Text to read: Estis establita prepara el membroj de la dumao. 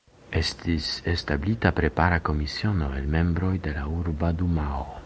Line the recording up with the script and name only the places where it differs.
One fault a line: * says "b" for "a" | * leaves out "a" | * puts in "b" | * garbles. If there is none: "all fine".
* puts in "komisiono"
* puts in "urba"